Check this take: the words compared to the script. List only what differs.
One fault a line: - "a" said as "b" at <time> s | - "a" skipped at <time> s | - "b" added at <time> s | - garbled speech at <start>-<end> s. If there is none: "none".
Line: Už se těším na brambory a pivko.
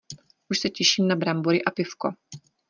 none